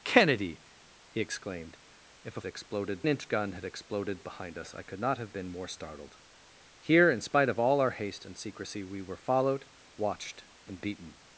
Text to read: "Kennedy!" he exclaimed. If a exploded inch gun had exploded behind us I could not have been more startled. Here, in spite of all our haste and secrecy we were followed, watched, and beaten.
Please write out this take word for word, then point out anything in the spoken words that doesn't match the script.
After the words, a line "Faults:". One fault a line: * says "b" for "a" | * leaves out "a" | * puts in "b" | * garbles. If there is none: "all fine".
"Kennedy!" he exclaimed. If a exploded inch gun had exploded behind us I could not have been more startled. Here, in spite of all our haste and secrecy we were followed, watched, and beaten.
Faults:
all fine